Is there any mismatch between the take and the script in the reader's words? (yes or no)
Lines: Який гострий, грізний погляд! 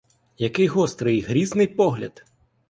no